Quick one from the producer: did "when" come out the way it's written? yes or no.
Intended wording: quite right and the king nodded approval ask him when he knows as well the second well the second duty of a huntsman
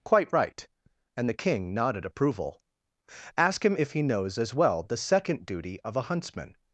no